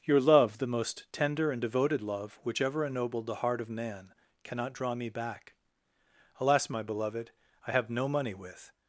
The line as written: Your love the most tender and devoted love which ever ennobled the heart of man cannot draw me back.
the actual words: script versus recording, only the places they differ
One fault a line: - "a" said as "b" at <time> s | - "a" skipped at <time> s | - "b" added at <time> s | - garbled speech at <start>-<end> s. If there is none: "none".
- "Alas my beloved I have no money with" added at 6.4 s